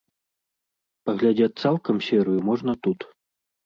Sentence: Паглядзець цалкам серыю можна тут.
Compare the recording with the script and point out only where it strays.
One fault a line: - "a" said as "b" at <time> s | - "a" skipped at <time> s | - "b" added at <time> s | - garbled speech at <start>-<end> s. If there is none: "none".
none